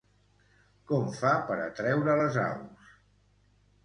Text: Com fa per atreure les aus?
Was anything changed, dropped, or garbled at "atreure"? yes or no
no